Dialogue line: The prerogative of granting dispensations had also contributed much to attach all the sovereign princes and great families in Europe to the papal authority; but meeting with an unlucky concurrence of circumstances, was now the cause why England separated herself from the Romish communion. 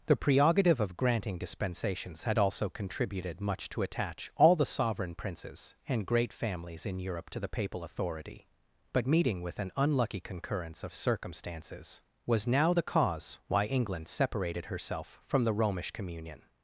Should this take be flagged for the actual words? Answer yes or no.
no